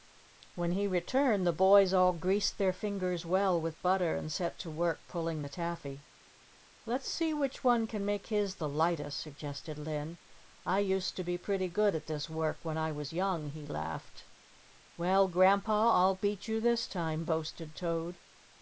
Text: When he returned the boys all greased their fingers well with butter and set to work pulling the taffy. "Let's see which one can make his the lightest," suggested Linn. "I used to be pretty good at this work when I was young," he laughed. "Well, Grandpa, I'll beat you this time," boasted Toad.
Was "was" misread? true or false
false